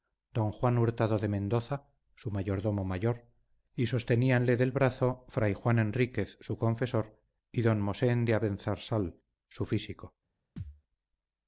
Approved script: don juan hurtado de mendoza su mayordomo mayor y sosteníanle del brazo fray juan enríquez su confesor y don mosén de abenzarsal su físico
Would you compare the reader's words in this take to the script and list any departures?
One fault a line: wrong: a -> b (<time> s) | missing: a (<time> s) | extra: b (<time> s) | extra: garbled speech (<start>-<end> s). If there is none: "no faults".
no faults